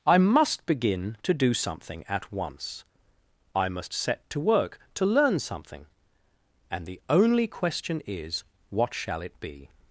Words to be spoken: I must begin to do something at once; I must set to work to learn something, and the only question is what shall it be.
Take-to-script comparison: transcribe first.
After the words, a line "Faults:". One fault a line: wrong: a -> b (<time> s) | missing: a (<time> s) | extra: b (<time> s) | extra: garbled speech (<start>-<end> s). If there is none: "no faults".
I must begin to do something at once; I must set to work to learn something, and the only question is what shall it be.
Faults:
no faults